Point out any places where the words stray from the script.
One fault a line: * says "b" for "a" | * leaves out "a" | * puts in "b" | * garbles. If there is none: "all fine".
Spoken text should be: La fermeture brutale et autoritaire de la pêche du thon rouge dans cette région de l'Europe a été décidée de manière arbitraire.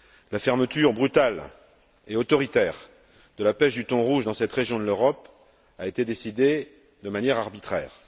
all fine